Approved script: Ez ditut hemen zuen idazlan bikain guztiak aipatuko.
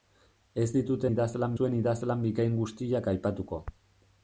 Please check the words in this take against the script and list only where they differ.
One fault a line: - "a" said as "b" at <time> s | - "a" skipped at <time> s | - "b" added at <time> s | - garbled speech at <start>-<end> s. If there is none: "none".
- "hemen" said as "idazlan" at 1.1 s